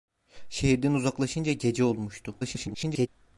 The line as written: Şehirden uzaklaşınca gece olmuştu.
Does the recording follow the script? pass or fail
fail